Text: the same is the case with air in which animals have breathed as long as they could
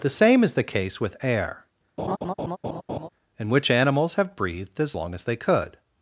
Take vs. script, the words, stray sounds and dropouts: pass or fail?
fail